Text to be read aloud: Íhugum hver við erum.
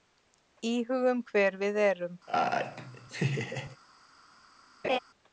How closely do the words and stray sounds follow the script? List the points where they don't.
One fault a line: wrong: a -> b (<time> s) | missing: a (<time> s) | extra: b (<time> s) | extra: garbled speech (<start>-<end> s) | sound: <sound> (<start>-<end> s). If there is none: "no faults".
sound: laugh (2.3-3.8 s)
sound: laugh (4.8-5.0 s)